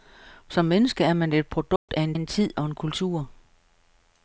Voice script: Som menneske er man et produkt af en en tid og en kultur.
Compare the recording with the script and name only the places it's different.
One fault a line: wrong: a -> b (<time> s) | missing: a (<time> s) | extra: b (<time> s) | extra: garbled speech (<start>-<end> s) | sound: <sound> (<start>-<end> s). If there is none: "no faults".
sound: dropout (1.8-1.9 s)